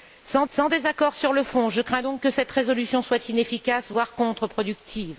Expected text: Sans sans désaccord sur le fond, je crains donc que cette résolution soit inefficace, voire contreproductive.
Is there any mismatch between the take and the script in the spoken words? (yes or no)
no